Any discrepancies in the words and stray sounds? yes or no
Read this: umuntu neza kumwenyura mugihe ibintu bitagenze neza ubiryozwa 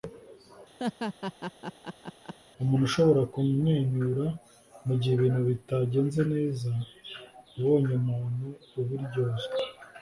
yes